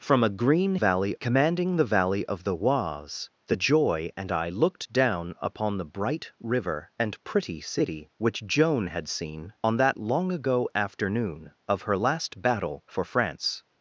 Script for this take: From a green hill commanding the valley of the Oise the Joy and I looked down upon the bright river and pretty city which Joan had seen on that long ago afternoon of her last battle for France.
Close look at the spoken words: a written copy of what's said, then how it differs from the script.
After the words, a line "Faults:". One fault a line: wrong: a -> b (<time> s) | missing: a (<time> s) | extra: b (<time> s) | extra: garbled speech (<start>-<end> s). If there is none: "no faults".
From a green valley commanding the valley of the Oise the Joy and I looked down upon the bright river and pretty city which Joan had seen on that long ago afternoon of her last battle for France.
Faults:
wrong: hill -> valley (0.7 s)